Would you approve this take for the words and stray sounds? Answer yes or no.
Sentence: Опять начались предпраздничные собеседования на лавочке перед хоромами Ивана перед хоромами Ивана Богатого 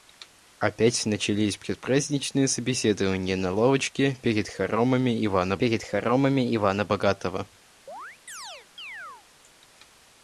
no